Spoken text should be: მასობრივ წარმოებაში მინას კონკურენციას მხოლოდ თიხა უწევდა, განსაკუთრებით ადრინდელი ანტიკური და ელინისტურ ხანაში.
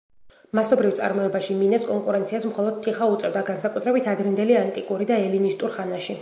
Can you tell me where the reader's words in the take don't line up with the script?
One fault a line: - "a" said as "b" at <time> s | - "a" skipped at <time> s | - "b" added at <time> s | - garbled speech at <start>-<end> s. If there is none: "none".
none